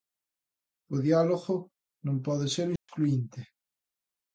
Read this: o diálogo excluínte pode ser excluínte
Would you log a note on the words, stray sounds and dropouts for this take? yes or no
yes